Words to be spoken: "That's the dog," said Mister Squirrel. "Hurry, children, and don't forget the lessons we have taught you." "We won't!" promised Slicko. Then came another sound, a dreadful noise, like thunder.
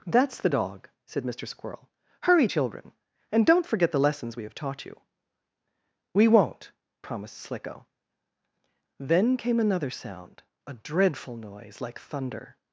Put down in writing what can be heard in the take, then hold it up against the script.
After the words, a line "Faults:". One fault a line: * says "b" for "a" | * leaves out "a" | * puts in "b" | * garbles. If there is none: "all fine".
"That's the dog," said Mister Squirrel. "Hurry, children, and don't forget the lessons we have taught you." "We won't!" promised Slicko. Then came another sound, a dreadful noise, like thunder.
Faults:
all fine